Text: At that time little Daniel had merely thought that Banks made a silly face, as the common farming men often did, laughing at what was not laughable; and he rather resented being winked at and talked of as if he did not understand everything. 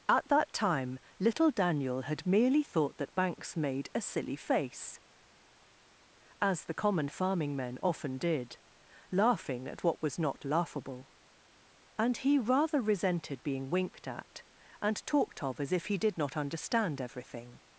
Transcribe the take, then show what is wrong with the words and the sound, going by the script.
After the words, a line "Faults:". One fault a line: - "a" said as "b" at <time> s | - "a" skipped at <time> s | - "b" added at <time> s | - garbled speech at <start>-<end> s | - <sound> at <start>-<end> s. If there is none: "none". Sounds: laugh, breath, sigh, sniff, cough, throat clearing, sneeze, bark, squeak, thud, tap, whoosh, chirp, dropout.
At that time little Daniel had merely thought that Banks made a silly face, as the common farming men often did, laughing at what was not laughable; and he rather resented being winked at and talked of as if he did not understand everything.
Faults:
none